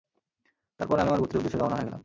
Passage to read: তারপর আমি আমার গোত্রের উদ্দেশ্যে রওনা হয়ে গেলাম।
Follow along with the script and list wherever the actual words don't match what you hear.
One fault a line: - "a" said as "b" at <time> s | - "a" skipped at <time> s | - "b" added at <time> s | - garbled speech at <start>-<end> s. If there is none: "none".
none